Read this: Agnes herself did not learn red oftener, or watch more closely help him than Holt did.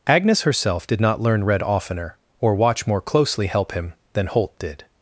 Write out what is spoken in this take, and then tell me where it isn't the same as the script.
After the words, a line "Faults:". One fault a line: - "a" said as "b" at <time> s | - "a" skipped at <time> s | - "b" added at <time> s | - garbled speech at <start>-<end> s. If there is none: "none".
Agnes herself did not learn red oftener, or watch more closely help him than Holt did.
Faults:
none